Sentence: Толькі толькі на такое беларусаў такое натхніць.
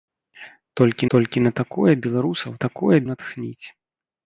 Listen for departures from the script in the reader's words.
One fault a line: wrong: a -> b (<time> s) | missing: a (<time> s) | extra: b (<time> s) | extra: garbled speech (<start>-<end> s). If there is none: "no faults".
no faults